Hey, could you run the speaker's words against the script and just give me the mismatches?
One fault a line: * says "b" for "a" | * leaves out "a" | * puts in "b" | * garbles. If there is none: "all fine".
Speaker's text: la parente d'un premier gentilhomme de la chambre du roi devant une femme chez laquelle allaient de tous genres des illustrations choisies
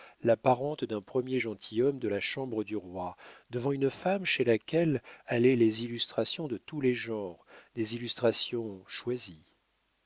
* puts in "les illustrations"
* puts in "les"